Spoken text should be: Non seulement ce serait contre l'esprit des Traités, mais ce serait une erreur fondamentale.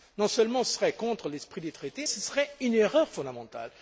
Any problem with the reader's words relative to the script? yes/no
yes